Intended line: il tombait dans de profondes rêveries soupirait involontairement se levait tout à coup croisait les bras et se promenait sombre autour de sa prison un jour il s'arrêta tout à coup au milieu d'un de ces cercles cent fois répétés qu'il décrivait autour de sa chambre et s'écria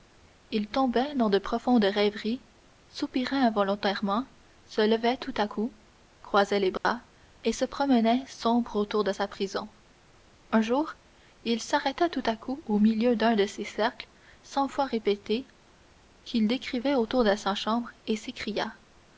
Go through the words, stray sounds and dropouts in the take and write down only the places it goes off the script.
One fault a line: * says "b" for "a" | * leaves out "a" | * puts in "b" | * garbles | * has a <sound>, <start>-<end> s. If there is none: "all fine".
* has a dropout, 6.8-6.8 s